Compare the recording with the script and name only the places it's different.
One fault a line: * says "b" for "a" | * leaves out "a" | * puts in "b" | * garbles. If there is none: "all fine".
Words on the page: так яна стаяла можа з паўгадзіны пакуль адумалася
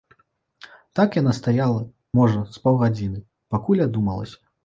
all fine